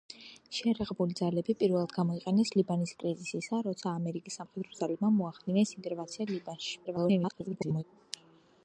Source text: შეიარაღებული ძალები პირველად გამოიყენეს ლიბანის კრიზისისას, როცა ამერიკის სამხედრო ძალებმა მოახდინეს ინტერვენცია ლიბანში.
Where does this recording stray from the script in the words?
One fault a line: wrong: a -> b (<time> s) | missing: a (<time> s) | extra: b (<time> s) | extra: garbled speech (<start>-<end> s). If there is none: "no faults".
extra: garbled speech (6.8-7.8 s)